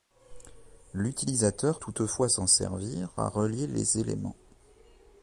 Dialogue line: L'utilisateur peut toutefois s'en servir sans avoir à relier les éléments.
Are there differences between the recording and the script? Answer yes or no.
yes